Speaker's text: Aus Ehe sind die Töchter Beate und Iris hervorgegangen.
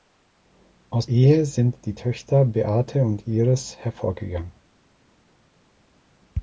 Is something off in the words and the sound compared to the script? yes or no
no